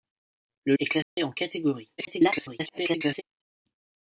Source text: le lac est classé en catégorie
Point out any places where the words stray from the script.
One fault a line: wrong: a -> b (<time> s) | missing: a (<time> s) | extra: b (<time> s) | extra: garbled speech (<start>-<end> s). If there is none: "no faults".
missing: lac (0.8 s)
extra: garbled speech (2.0-3.2 s)